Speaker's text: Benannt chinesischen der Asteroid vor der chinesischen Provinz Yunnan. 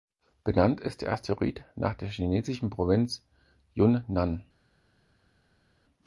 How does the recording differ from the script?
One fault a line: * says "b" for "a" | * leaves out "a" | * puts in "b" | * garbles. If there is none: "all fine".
* says "ist" for "chinesischen"
* says "nach" for "vor"